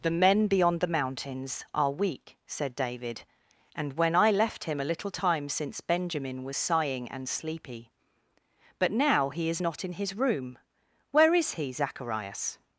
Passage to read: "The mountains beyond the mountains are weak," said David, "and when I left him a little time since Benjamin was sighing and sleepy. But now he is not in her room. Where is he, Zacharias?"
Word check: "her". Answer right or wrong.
wrong